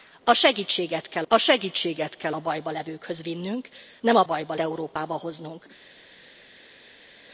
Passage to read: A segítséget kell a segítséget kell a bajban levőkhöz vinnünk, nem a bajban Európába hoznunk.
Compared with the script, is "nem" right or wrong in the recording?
right